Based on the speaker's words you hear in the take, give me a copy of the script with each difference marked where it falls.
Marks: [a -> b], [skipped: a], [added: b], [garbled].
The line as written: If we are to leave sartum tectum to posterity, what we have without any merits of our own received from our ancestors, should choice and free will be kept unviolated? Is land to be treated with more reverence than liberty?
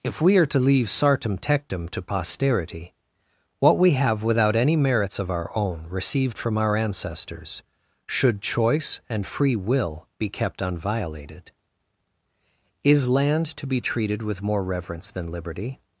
If we are to leave sartum tectum to posterity, what we have without any merits of our own received from our ancestors, should choice and free will be kept unviolated? Is land to be treated with more reverence than liberty?